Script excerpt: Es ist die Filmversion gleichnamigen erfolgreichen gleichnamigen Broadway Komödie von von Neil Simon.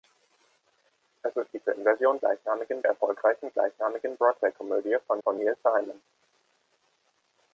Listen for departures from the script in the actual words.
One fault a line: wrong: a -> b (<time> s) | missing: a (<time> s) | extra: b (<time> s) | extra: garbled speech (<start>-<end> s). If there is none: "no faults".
no faults